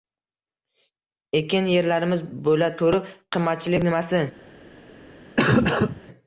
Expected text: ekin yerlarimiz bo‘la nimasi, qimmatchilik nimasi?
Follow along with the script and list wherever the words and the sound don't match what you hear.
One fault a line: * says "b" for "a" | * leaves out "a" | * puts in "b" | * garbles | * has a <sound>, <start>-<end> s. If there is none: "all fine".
* says "turib" for "nimasi"
* has a cough, 5.4-6.0 s